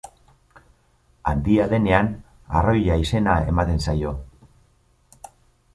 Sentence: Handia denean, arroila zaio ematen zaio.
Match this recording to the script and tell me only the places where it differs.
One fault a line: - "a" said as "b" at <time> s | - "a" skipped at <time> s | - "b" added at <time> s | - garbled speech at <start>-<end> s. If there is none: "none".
- "zaio" said as "izena" at 3.0 s